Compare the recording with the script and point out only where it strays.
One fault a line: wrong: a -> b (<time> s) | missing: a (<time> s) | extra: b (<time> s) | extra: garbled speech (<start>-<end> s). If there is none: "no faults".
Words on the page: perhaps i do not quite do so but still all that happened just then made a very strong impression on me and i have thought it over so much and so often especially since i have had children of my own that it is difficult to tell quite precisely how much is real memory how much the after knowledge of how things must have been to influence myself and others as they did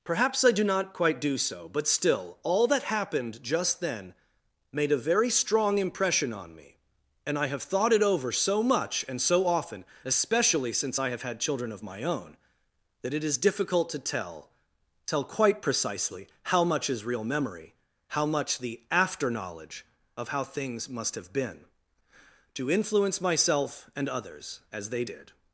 extra: tell (15.1 s)